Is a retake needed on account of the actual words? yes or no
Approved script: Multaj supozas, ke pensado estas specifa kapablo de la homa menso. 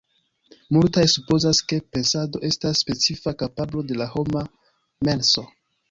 no